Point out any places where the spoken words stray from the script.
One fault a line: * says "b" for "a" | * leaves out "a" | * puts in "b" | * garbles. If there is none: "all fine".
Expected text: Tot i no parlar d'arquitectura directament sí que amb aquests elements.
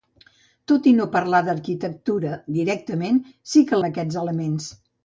all fine